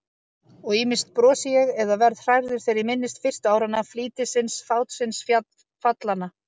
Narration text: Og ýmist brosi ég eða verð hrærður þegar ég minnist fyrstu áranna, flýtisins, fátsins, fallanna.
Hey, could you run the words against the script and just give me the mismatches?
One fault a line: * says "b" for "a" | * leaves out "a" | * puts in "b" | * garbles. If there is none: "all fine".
all fine